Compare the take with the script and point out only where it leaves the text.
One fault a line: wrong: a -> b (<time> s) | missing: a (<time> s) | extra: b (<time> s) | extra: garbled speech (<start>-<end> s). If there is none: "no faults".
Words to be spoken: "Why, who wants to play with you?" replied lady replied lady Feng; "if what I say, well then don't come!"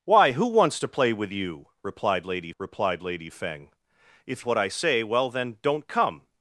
no faults